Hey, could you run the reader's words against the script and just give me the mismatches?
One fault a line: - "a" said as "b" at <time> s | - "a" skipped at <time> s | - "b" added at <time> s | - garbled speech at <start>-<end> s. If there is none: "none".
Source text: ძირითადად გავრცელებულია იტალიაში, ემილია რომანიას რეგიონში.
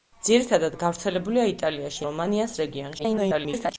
- "ემილია" skipped at 2.0 s
- garbled speech at 3.0-3.7 s